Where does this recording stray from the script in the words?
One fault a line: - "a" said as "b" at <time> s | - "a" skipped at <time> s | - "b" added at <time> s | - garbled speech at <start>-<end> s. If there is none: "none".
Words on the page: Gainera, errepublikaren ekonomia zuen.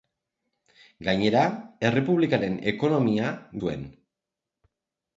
none